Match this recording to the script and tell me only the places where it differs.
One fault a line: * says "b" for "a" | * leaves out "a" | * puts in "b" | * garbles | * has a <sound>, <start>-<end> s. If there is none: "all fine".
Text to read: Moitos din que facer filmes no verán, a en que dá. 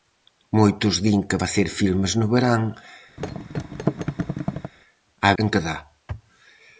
* has a thud, 3.2-4.7 s